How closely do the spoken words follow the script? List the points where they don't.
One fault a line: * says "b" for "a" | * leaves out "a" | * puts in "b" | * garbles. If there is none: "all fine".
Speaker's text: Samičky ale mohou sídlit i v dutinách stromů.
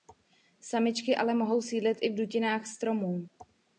all fine